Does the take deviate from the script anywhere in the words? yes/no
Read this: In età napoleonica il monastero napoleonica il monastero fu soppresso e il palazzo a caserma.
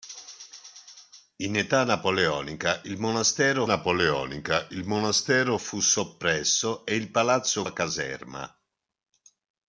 no